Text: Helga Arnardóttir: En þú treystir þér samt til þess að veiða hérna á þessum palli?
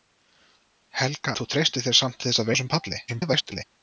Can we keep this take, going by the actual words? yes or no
no